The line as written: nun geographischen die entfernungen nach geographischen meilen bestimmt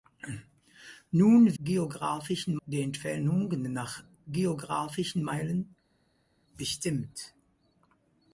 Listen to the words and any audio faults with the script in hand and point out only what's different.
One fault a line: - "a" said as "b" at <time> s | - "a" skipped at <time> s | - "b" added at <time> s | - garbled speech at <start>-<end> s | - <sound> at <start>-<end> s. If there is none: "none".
none